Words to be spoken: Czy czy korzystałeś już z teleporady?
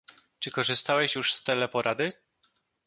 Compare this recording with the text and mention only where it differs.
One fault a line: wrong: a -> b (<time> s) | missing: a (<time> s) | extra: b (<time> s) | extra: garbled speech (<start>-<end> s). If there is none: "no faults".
missing: czy (0.5 s)